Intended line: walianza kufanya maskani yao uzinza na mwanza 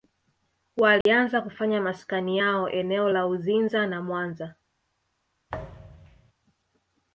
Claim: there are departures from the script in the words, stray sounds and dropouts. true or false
true